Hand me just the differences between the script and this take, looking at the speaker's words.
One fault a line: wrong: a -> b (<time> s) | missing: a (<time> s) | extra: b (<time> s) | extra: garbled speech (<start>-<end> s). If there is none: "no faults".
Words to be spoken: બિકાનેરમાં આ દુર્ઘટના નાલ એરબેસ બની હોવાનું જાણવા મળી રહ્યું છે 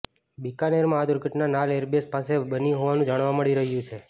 extra: પાસે (2.1 s)